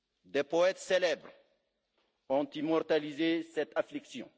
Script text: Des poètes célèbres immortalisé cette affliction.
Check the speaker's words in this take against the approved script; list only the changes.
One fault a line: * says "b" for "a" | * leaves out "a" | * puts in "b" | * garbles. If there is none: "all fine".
* puts in "ont"